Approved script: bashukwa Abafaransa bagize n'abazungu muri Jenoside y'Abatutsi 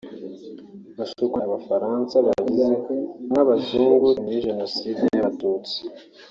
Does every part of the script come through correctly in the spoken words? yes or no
yes